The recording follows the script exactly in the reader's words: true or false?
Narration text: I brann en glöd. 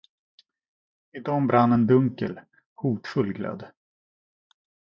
false